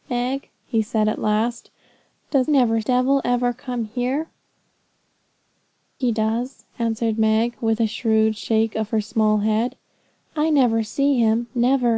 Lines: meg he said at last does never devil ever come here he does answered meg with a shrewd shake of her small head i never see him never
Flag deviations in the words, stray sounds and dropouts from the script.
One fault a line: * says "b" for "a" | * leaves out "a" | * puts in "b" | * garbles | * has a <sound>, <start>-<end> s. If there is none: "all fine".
all fine